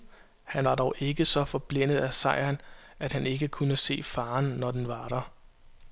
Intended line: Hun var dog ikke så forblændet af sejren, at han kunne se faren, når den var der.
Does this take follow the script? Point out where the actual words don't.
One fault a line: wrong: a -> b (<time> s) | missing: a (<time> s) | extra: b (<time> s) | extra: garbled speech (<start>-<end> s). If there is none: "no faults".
wrong: Hun -> Han (0.4 s)
extra: ikke (3.3 s)